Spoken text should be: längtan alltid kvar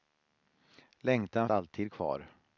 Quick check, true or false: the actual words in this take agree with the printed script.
true